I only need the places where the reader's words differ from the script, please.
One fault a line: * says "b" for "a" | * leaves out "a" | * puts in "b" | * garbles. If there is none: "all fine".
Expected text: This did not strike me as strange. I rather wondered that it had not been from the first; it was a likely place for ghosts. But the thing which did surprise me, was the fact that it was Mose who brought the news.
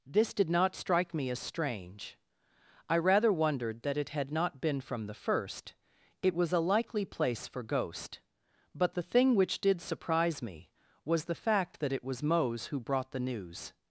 * says "ghost" for "ghosts"